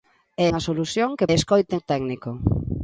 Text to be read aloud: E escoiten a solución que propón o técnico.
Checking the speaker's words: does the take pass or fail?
fail